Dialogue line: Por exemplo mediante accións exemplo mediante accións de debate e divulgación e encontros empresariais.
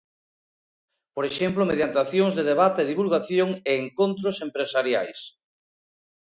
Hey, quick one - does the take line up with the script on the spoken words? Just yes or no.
no